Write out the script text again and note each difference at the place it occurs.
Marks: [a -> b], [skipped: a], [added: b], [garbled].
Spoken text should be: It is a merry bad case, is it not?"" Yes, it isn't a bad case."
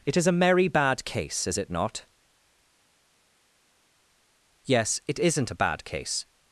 It is a merry bad case, is it not?"" Yes, it isn't a bad case."